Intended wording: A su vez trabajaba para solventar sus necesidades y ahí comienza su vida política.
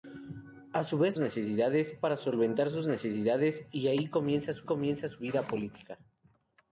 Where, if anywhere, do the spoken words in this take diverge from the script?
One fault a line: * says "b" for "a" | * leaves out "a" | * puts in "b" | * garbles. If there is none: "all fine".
* says "necesidades" for "trabajaba"
* puts in "comienza su"